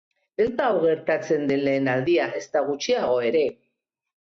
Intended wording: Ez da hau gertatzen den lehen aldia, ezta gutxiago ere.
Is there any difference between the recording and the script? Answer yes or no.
no